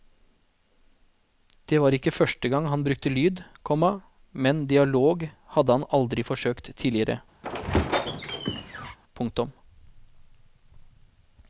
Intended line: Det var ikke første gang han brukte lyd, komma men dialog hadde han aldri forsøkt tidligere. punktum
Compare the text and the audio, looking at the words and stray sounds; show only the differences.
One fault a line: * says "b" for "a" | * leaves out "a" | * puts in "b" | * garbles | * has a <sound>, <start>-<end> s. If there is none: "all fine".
* has a squeak, 7.4-9.0 s